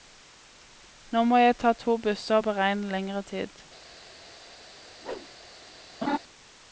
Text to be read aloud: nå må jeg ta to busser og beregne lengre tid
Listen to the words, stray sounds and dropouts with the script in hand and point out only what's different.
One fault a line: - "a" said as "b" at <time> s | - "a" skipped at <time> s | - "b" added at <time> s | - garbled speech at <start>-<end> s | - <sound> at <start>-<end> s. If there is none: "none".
- whoosh at 5.0-5.3 s
- laugh at 6.0-6.2 s